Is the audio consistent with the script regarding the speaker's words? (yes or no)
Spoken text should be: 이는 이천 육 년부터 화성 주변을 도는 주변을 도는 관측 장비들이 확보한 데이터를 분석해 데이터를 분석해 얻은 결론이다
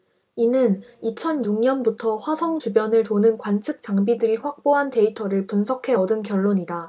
no